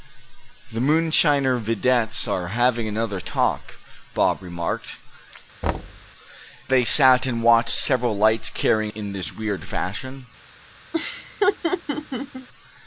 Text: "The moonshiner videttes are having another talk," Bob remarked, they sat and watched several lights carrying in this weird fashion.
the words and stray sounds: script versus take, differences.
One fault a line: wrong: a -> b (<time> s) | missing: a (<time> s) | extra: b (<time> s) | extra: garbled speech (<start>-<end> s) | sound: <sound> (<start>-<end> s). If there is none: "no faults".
sound: thud (5.6-6.1 s)
sound: laugh (10.9-12.5 s)